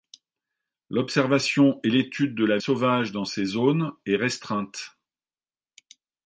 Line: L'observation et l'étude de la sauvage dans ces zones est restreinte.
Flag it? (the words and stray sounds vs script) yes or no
no